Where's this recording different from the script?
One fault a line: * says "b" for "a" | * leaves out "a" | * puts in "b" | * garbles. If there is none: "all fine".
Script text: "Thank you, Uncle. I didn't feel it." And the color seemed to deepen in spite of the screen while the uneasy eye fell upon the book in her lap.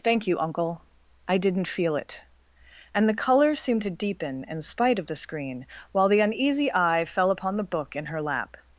all fine